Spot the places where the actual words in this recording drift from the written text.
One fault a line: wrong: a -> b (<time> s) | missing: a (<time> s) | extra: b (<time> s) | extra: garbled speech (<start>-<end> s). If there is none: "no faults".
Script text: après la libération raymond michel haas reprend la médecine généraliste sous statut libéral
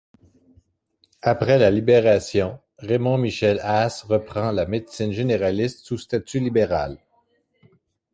no faults